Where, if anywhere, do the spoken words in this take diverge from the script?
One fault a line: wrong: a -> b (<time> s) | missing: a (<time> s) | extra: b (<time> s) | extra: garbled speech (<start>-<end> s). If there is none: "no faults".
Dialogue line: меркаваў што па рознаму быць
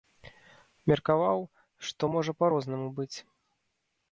extra: можа (2.1 s)